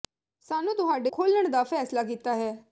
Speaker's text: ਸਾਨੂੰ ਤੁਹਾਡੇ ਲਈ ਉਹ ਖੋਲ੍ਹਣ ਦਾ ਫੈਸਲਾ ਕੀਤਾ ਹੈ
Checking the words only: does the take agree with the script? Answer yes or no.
no